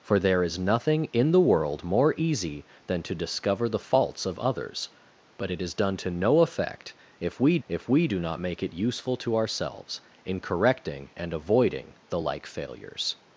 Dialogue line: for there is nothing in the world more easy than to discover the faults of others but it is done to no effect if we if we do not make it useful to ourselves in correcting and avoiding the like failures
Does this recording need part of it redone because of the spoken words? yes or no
no